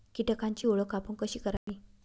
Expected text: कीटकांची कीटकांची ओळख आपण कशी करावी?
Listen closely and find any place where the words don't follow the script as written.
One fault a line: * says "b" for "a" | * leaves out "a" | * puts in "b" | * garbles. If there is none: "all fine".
* leaves out "कीटकांची"